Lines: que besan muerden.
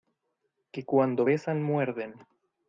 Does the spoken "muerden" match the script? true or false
true